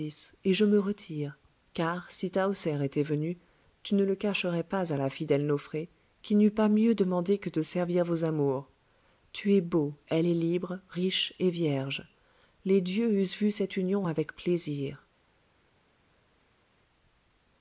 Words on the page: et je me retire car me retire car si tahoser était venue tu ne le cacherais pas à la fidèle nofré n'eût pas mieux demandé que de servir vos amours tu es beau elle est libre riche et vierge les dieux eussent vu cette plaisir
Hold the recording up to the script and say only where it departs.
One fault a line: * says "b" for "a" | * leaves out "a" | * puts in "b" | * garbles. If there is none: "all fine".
* leaves out "me retire car"
* puts in "qui"
* puts in "union avec"